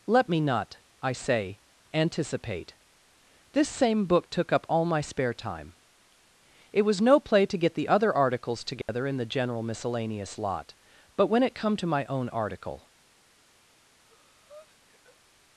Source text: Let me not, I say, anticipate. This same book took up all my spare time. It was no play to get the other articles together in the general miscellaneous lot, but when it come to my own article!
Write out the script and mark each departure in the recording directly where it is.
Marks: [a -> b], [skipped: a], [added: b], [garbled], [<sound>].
Let me not, I say, anticipate. This same book took up all my spare time. It was no play to get the other articles together [dropout] in the general miscellaneous lot, but when it come to my own article! [breath]